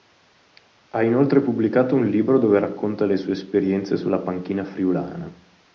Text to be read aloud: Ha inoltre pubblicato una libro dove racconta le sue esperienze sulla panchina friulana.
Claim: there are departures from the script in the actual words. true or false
true